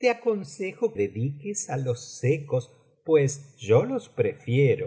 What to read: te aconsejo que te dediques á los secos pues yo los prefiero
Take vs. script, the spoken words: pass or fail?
fail